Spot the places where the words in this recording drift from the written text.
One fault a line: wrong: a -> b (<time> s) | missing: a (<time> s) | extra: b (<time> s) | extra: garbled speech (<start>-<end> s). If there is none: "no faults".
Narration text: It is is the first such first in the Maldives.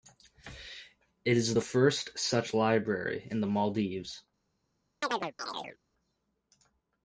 missing: is (1.5 s)
wrong: first -> library (2.5 s)